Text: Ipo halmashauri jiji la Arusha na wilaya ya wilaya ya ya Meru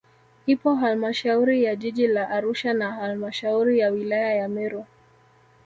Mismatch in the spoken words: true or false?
true